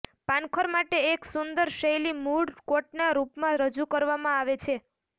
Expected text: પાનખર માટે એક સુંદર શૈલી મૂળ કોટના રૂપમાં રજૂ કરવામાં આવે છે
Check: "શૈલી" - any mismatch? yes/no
no